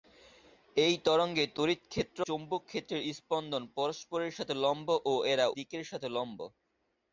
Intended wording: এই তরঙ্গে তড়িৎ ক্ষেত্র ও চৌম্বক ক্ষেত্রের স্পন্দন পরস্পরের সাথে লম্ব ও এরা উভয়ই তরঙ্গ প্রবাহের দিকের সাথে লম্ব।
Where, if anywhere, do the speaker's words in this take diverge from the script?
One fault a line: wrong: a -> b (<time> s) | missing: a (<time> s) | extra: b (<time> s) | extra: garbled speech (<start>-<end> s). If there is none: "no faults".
missing: ও (2.2 s)
missing: উভয়ই তরঙ্গ প্রবাহের (5.5 s)